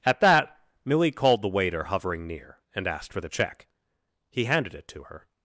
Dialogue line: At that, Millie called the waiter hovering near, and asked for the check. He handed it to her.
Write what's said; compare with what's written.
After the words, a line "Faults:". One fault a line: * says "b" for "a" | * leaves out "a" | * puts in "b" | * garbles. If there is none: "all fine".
At that, Millie called the waiter hovering near, and asked for the check. He handed it to her.
Faults:
all fine